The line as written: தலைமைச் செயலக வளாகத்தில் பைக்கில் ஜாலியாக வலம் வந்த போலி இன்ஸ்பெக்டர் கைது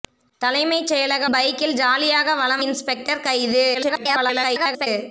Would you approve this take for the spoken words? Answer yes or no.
no